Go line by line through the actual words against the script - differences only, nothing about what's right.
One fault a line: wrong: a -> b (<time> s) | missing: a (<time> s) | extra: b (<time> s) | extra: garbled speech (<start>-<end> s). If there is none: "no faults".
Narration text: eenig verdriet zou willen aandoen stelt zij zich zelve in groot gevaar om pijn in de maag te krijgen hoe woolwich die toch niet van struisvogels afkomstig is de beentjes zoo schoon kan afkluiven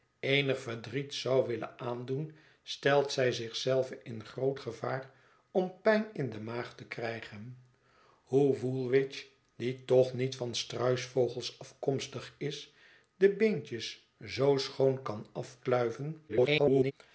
extra: garbled speech (16.3-16.9 s)